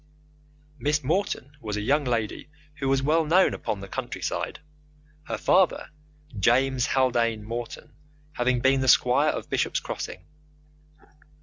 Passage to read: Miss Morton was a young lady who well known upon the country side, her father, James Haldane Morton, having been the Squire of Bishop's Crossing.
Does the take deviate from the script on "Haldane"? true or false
false